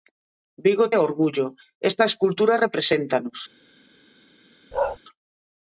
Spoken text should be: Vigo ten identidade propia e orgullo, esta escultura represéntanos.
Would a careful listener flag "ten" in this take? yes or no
yes